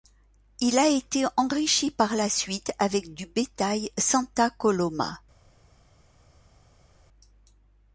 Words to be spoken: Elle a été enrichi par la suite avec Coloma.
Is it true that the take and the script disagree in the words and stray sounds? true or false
true